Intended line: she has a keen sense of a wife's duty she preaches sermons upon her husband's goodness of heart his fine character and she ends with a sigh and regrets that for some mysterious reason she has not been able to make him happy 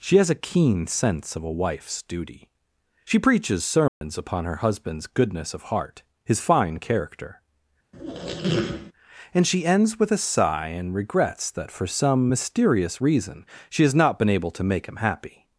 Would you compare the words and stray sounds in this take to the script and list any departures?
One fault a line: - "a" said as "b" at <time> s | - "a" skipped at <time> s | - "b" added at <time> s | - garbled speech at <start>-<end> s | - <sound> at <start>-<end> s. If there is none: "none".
- dropout at 3.9-4.0 s
- squeak at 7.9-8.9 s